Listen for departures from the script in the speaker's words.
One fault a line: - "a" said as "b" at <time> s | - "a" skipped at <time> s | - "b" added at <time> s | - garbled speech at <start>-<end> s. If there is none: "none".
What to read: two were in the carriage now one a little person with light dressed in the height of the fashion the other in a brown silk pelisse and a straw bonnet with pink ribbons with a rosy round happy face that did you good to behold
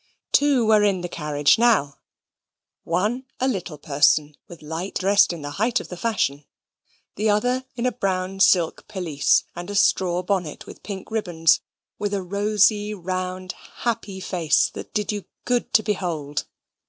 none